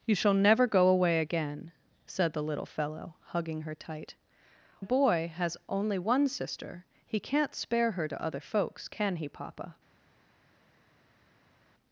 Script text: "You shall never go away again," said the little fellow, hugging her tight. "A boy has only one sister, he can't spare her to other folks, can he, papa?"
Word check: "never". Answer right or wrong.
right